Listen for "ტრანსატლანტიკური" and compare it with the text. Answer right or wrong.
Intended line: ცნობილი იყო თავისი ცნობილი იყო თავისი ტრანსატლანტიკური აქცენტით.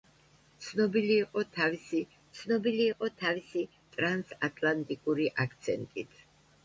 right